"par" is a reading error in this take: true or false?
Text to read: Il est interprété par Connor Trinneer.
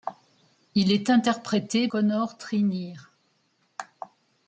true